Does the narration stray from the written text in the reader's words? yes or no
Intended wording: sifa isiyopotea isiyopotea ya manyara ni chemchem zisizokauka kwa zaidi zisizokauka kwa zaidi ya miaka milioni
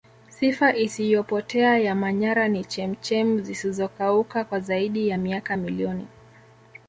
yes